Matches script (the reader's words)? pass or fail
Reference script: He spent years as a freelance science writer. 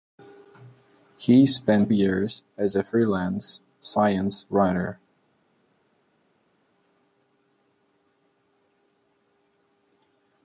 pass